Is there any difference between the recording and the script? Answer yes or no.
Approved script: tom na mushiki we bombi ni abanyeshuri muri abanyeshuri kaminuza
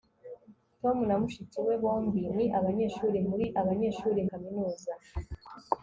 no